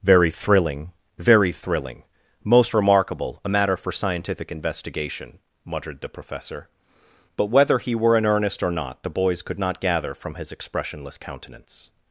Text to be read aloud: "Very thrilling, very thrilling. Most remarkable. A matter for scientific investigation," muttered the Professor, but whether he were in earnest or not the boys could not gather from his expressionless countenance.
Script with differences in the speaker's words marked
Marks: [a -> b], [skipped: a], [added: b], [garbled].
"Very thrilling, very thrilling. Most remarkable. A matter for scientific investigation," muttered the Professor, but whether he were in earnest or not the boys could not gather from his expressionless countenance.